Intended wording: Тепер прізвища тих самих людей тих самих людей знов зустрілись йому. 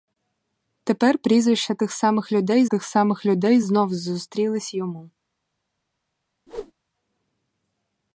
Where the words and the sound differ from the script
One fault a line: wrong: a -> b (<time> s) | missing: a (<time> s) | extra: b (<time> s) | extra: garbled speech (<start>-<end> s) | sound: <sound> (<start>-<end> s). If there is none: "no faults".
sound: whoosh (6.5-6.7 s)